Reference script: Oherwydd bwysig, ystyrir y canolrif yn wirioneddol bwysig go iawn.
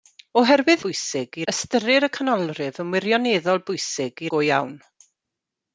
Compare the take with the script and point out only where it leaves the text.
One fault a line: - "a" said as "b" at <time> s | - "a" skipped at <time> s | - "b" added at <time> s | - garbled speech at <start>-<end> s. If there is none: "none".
none